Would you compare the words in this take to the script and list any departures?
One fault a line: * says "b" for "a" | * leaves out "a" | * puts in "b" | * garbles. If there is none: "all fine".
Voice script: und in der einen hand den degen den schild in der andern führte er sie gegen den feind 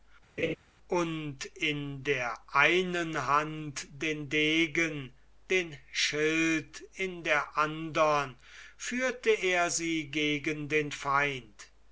all fine